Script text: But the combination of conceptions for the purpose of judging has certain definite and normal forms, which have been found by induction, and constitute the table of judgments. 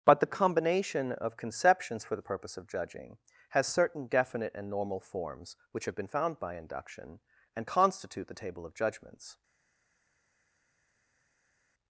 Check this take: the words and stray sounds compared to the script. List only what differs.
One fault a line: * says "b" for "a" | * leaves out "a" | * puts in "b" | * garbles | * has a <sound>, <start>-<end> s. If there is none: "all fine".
all fine